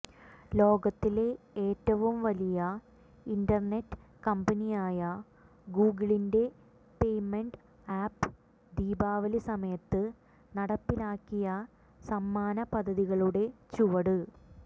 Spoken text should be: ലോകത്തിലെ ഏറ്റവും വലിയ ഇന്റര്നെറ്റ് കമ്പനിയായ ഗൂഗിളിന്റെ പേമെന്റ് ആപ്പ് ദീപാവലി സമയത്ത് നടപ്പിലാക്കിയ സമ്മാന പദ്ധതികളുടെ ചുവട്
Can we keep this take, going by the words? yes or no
yes